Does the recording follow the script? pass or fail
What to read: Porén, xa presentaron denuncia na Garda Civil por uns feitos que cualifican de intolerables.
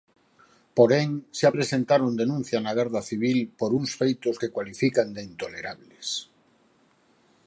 pass